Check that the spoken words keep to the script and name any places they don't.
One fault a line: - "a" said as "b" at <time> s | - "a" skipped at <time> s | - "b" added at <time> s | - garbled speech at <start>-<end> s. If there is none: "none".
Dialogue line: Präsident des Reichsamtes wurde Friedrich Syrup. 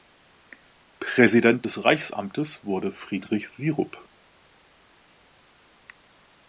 none